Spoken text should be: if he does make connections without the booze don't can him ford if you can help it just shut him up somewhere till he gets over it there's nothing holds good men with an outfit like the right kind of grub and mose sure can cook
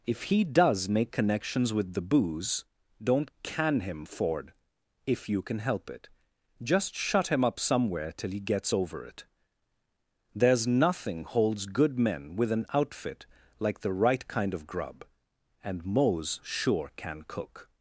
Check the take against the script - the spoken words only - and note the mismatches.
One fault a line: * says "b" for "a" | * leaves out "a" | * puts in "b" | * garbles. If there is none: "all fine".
* says "with" for "without"